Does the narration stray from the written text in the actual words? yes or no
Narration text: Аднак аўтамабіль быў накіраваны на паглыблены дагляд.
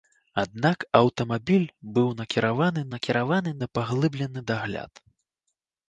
yes